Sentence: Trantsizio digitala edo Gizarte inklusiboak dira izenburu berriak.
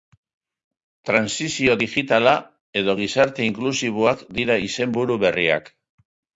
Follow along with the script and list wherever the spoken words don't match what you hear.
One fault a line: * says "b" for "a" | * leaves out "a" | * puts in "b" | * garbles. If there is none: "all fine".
all fine